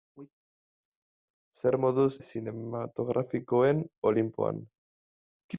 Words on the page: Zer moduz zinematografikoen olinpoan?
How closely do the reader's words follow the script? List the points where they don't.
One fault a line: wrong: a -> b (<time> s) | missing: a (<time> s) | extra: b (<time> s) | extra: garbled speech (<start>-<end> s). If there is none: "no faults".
no faults